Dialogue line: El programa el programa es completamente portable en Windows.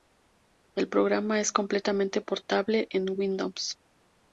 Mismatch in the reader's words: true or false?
true